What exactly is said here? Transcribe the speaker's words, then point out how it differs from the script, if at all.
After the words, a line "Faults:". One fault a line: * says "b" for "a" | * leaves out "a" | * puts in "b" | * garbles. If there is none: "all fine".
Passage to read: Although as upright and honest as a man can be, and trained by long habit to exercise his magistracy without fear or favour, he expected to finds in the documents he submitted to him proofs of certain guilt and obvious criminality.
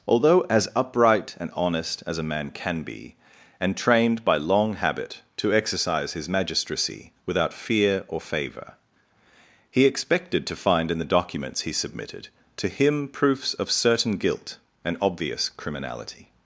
Although as upright and honest as a man can be, and trained by long habit to exercise his magistracy without fear or favour, he expected to find in the documents he submitted to him proofs of certain guilt and obvious criminality.
Faults:
* says "find" for "finds"